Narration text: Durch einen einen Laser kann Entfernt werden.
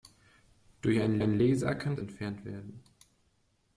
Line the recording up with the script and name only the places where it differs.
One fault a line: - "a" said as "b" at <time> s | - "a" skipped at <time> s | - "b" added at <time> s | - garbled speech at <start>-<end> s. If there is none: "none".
none